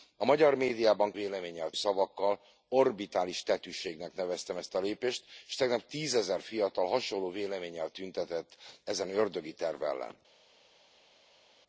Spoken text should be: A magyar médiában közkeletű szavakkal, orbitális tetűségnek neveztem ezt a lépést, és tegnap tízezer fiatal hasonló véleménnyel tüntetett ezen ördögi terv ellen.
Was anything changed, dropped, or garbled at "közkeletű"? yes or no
yes